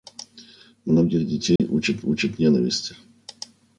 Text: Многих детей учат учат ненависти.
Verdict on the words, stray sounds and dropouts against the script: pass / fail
fail